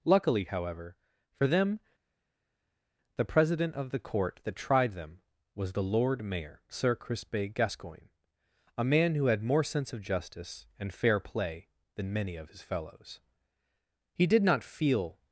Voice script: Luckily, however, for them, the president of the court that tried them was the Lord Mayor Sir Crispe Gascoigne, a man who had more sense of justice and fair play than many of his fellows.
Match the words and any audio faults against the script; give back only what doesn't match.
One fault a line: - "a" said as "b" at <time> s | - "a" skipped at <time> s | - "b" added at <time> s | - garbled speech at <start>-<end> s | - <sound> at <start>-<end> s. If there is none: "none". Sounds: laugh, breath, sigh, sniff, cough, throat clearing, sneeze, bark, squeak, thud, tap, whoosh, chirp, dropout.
- "He did not feel" added at 14.1 s